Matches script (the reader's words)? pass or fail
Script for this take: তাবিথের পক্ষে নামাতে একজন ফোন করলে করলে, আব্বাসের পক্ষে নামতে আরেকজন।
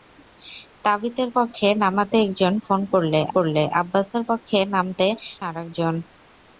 pass